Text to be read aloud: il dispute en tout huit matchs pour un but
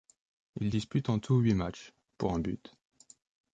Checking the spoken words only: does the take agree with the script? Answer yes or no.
yes